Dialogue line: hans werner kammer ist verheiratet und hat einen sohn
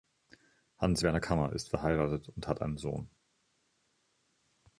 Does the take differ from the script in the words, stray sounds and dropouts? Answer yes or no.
no